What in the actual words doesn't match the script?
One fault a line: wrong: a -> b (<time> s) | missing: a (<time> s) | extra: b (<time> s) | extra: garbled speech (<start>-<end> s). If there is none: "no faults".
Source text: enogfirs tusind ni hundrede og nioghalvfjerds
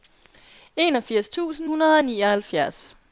missing: ni (1.7 s)